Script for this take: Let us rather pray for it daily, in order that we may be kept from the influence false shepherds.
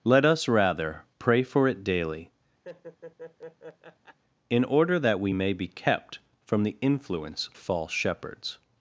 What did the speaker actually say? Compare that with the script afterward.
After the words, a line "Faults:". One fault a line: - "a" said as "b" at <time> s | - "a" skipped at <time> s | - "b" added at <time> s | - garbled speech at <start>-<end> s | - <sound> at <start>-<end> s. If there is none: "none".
Let us rather pray for it daily, in order that we may be kept from the influence false shepherds.
Faults:
- laugh at 2.6-4.2 s